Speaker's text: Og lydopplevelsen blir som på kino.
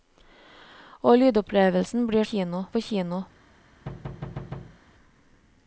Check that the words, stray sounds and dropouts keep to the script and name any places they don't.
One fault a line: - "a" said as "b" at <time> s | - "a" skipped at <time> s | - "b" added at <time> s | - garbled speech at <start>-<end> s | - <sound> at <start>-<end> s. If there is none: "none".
- "som" said as "kino" at 2.2 s
- thud at 3.9-4.8 s